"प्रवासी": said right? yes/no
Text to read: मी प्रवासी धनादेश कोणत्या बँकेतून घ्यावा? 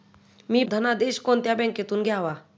no